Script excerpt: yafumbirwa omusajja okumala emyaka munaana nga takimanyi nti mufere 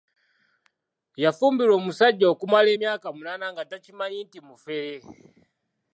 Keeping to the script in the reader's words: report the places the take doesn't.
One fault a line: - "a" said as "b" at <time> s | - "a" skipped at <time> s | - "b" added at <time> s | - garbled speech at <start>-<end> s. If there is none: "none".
none